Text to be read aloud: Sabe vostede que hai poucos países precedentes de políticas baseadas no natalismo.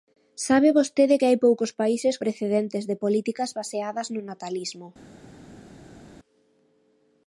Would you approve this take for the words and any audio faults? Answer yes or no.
yes